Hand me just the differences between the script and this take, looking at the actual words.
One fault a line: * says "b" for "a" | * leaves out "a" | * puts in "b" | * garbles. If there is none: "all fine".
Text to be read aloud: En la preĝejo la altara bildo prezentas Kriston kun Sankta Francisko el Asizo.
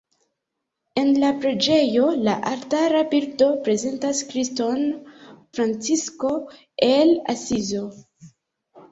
* leaves out "kun Sankta"